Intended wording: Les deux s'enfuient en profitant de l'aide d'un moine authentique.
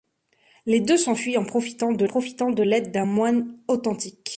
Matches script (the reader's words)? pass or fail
fail